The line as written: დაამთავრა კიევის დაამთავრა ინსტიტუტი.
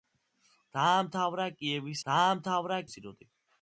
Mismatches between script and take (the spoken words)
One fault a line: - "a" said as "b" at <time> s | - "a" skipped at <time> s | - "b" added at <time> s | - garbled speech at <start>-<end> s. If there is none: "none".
none